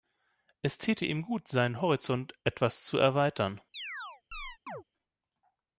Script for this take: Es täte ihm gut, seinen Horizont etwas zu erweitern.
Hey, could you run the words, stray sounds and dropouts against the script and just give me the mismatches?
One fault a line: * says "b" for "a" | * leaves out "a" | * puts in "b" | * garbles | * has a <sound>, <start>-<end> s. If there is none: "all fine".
* has a chirp, 3.7-4.8 s